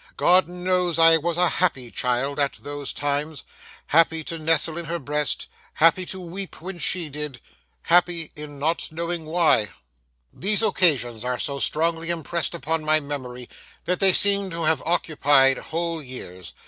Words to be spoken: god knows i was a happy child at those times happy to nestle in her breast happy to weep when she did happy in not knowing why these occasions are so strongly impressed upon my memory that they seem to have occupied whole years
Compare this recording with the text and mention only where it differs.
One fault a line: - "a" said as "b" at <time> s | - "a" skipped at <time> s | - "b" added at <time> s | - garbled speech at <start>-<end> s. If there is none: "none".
none